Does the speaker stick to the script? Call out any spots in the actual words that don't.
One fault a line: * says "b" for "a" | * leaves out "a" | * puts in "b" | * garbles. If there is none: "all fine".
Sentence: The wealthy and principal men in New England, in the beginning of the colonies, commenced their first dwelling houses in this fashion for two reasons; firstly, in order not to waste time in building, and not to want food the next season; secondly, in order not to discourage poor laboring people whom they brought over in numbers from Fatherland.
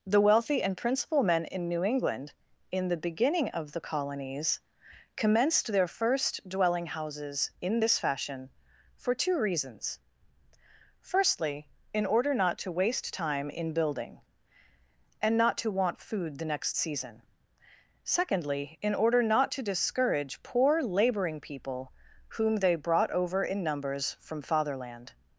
all fine